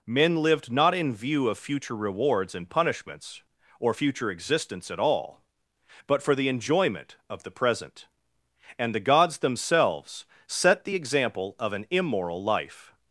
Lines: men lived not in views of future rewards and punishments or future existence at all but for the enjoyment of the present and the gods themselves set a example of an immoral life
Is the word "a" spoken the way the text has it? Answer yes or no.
no